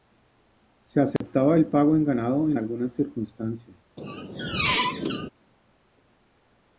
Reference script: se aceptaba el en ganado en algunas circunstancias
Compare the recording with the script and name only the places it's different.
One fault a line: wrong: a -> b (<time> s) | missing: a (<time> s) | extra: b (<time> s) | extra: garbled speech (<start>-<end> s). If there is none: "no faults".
extra: pago (1.7 s)